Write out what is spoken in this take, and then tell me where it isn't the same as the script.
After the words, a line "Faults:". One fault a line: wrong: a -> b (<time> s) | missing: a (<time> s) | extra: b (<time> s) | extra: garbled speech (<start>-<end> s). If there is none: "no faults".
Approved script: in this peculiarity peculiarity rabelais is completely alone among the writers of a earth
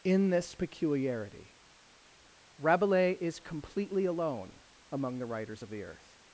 in this peculiarity rabelais is completely alone among the writers of the earth
Faults:
missing: peculiarity (1.6 s)
wrong: a -> the (5.7 s)